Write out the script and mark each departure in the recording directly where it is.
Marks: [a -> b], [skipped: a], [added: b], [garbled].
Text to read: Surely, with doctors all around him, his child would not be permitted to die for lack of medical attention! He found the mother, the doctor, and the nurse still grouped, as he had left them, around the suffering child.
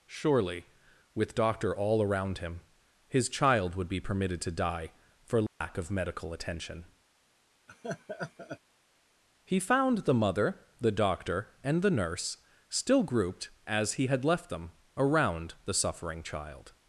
Surely, with [doctors -> doctor] all around him, his child would [skipped: not] be permitted to die for lack of medical attention! He found the mother, the doctor, and the nurse still grouped, as he had left them, around the suffering child.